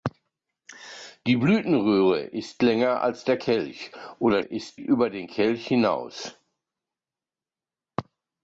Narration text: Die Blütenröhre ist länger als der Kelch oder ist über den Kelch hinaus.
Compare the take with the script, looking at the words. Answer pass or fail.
pass